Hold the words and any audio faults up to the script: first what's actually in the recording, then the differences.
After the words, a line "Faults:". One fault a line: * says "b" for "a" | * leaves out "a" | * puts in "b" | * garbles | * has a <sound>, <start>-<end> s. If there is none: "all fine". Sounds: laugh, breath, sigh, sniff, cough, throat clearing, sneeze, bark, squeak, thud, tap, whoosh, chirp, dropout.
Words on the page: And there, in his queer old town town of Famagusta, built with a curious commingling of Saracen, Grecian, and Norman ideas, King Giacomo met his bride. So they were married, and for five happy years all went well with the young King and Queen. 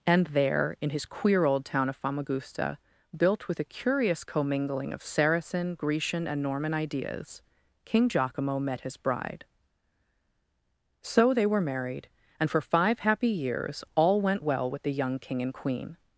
And there, in his queer old town of Famagusta, built with a curious commingling of Saracen, Grecian, and Norman ideas, King Giacomo met his bride. So they were married, and for five happy years all went well with the young King and Queen.
Faults:
* leaves out "town"